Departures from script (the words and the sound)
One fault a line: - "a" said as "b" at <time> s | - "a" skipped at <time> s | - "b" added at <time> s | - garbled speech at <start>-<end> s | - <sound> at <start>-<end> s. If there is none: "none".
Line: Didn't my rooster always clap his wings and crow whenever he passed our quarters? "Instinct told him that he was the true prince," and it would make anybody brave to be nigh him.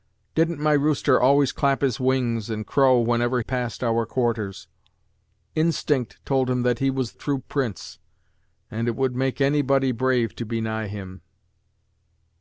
- "he" skipped at 3.4 s
- "the" skipped at 7.1 s